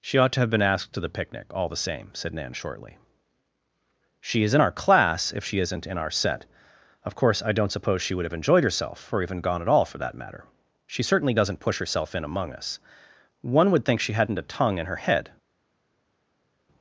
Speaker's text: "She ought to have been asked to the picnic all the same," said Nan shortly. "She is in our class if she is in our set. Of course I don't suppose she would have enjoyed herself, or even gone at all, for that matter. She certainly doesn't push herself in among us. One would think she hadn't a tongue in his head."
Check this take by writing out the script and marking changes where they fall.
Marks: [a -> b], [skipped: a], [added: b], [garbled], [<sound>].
"She ought to have been asked to the picnic all the same," said Nan shortly. "She is in our class if she [is -> isn't] in our set. Of course I don't suppose she would have enjoyed herself, or even gone at all, for that matter. She certainly doesn't push herself in among us. One would think she hadn't a tongue in [his -> her] head."